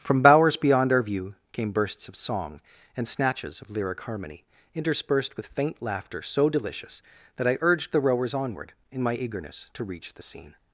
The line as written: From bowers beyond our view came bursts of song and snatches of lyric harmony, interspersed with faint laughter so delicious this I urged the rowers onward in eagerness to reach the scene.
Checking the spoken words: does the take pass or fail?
fail